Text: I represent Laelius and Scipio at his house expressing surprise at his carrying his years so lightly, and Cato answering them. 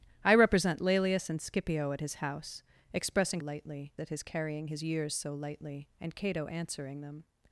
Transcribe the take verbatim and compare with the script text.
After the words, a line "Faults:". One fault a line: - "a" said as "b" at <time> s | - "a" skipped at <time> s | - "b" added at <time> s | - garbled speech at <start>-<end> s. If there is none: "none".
I represent Laelius and Scipio at his house expressing lightly at his carrying his years so lightly, and Cato answering them.
Faults:
- "surprise" said as "lightly" at 3.4 s